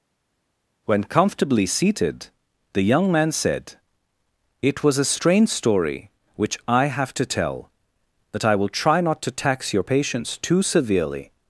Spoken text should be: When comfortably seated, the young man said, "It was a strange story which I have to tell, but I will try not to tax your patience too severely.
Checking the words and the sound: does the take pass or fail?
pass